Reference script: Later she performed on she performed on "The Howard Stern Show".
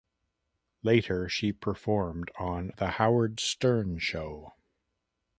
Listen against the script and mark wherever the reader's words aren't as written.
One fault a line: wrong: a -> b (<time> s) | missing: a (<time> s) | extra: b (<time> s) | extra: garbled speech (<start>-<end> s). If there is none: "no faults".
missing: she performed on (2.7 s)